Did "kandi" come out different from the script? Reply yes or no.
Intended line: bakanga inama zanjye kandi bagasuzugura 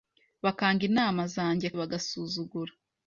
yes